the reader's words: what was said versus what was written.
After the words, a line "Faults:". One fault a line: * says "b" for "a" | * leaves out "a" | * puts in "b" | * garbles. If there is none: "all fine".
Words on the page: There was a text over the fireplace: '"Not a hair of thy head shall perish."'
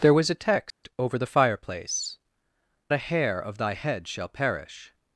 There was a text over the fireplace: '"A hair of thy head shall perish."'
Faults:
* leaves out "Not"